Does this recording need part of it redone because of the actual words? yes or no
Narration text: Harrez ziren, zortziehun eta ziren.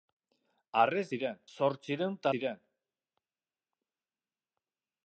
no